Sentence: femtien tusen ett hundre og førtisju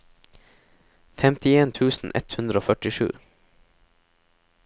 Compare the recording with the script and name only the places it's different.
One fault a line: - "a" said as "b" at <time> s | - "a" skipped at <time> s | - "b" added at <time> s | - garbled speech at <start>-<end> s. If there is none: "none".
none